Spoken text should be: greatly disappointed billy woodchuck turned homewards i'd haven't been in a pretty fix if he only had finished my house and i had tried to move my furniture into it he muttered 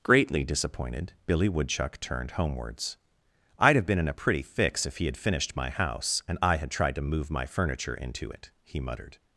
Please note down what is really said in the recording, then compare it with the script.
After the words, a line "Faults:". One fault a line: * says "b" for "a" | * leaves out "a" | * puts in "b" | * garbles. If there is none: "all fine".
greatly disappointed billy woodchuck turned homewards i'd have been in a pretty fix if he had finished my house and i had tried to move my furniture into it he muttered
Faults:
* says "have" for "haven't"
* leaves out "only"